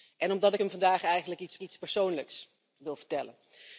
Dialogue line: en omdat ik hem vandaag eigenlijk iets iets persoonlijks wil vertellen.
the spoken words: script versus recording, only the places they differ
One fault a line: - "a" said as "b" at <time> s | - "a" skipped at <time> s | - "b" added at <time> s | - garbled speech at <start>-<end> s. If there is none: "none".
none